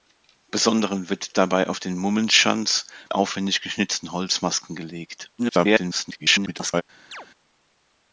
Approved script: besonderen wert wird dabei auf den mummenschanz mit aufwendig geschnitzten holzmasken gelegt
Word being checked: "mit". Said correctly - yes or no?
no